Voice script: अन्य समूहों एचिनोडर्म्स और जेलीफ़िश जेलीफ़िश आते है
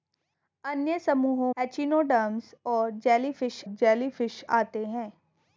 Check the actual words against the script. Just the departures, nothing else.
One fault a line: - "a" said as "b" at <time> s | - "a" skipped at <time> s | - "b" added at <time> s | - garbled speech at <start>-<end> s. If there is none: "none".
none